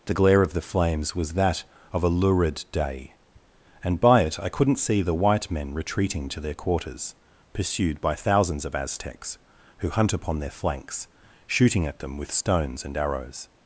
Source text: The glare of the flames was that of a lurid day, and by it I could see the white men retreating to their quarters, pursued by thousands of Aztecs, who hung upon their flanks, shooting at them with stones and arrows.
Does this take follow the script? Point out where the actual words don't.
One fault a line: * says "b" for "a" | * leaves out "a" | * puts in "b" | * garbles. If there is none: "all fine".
* says "couldn't" for "could"
* says "hunt" for "hung"